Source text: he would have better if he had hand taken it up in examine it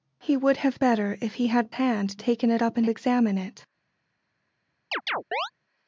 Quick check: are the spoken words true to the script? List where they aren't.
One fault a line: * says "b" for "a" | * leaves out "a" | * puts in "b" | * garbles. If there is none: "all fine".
all fine